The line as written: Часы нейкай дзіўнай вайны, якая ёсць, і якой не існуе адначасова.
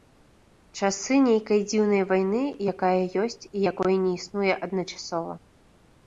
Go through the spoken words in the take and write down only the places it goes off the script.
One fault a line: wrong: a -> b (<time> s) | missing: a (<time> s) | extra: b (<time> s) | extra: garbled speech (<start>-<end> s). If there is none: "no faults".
no faults